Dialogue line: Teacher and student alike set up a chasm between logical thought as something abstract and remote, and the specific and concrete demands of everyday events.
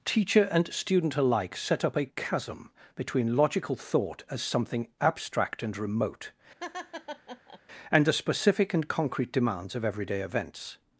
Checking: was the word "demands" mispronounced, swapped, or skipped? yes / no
no